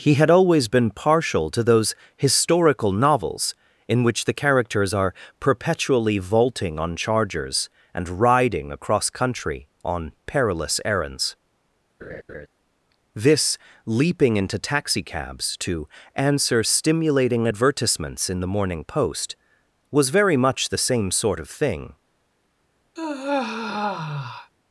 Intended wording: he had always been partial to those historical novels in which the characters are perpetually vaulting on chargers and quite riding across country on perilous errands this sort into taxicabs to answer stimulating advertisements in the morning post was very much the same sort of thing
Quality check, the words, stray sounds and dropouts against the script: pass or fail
fail